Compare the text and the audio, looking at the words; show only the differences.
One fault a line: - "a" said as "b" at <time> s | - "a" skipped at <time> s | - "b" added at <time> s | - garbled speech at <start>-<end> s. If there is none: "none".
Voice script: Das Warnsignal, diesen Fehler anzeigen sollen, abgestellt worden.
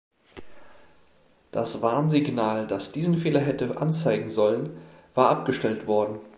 - "das" added at 2.6 s
- "hätte" added at 3.4 s
- "war" added at 5.1 s